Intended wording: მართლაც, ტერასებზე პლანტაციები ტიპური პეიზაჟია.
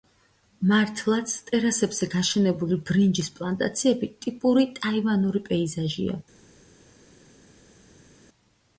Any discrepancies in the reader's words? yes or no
yes